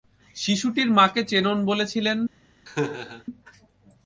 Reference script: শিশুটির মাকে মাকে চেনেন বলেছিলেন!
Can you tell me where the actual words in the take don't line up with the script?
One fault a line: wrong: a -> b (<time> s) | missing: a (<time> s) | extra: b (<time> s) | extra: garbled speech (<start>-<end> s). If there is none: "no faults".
missing: মাকে (1.2 s)